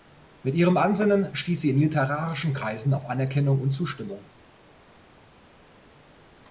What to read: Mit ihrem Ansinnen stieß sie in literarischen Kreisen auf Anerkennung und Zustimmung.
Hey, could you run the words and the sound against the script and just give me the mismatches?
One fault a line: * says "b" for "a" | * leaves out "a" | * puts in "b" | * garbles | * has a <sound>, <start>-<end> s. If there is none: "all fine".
all fine